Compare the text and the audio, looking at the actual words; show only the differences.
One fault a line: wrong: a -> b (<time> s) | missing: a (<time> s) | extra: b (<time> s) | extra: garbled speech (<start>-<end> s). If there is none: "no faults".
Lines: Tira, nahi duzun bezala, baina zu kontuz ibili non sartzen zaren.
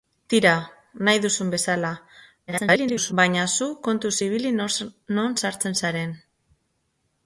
extra: garbled speech (2.5-3.1 s)